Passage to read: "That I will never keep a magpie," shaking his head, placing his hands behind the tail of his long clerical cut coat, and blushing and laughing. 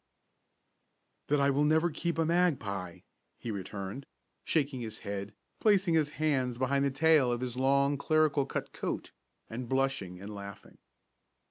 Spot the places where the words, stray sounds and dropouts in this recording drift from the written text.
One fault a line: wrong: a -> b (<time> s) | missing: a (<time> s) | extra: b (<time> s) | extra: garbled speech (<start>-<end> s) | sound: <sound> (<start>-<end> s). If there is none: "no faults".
extra: he returned (3.4 s)